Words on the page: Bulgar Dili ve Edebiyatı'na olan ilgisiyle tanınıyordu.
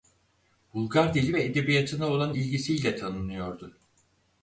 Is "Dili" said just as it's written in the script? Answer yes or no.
yes